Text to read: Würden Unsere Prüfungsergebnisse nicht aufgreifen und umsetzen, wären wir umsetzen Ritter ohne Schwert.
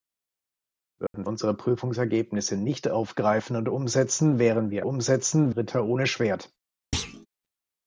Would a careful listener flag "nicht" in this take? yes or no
no